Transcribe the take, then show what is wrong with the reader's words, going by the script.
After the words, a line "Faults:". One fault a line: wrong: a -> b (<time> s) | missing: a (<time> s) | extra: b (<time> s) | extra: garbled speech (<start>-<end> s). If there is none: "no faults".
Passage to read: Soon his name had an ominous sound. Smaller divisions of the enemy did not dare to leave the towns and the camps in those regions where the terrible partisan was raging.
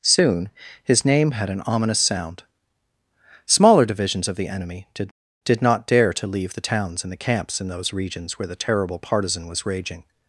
Soon his name had an ominous sound. Smaller divisions of the enemy did did not dare to leave the towns and the camps in those regions where the terrible partisan was raging.
Faults:
extra: did (5.4 s)